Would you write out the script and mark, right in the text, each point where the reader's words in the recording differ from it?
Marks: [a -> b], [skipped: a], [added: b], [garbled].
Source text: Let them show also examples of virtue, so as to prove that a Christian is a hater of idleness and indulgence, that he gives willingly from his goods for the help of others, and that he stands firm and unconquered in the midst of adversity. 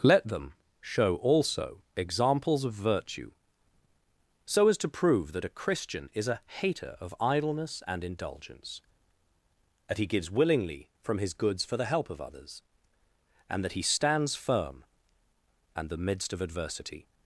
Let them show also examples of virtue, so as to prove that a Christian is a hater of idleness and indulgence, that he gives willingly from his goods for the help of others, and that he stands firm and [skipped: unconquered in] the midst of adversity.